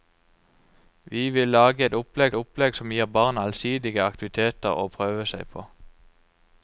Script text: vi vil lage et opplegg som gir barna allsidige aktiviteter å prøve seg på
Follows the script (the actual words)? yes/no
no